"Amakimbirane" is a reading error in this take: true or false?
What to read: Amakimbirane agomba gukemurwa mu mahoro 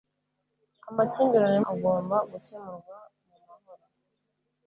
false